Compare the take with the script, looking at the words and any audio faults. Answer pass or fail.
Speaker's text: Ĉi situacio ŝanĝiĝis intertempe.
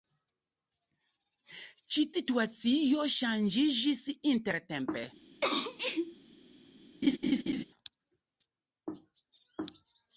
fail